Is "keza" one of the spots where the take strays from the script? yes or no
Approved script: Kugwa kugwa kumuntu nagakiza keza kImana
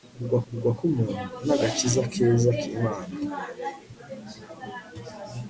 no